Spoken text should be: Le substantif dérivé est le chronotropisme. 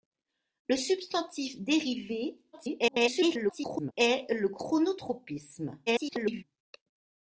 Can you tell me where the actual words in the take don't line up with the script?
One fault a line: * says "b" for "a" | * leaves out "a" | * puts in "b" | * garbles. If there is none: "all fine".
* garbles
* garbles